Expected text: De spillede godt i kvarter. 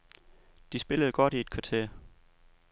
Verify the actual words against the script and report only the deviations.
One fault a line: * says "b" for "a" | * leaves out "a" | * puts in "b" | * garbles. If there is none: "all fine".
* puts in "et"